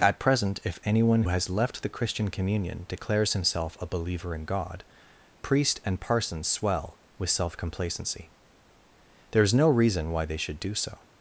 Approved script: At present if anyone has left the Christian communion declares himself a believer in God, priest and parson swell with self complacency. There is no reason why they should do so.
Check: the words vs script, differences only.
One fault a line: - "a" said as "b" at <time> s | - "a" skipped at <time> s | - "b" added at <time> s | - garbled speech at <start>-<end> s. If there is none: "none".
none